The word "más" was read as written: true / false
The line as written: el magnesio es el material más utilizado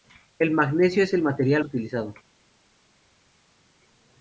false